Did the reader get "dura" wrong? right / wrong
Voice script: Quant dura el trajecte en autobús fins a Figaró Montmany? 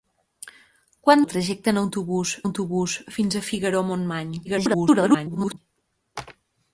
wrong